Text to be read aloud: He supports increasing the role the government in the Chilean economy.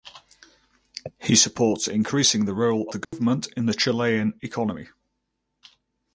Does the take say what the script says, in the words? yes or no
yes